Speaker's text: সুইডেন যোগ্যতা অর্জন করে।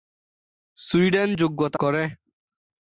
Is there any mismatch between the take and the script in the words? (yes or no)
yes